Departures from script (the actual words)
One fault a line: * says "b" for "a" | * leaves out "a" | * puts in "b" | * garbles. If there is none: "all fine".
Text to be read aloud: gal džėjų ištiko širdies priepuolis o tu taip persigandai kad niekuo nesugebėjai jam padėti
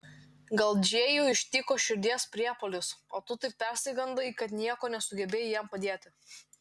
all fine